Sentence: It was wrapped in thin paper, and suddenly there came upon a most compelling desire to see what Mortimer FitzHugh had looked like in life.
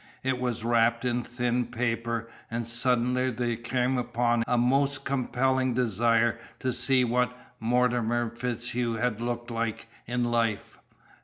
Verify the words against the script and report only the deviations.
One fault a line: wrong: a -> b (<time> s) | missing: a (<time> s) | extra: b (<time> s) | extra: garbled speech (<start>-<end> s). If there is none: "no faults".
no faults